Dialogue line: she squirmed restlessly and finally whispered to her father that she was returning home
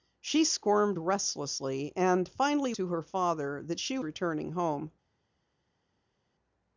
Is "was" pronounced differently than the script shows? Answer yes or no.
yes